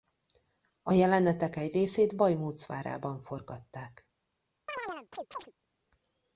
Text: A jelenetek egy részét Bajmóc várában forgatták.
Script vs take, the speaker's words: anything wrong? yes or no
no